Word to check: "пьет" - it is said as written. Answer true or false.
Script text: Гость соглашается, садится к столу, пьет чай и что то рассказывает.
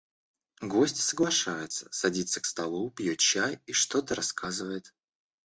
true